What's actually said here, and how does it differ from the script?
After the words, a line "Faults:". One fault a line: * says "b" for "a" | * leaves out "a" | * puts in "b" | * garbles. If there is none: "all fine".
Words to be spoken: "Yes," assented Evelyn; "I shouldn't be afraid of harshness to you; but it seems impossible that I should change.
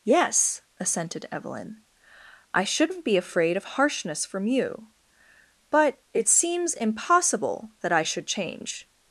"Yes," assented Evelyn; "I shouldn't be afraid of harshness from you; but it seems impossible that I should change.
Faults:
* says "from" for "to"